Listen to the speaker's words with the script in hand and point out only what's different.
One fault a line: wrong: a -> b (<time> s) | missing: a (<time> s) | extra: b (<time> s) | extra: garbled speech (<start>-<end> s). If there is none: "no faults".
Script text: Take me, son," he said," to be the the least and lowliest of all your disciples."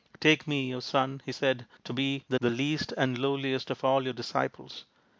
no faults